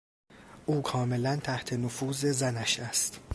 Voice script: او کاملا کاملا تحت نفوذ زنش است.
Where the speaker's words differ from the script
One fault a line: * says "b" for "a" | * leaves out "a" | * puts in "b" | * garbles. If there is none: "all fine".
* leaves out "کاملا"